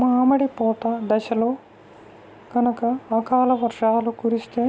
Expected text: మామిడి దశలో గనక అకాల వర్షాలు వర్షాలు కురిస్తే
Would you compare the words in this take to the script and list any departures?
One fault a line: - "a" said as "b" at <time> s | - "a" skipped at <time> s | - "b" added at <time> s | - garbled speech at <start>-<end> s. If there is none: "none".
- "పూత" added at 0.6 s
- "వర్షాలు" skipped at 4.1 s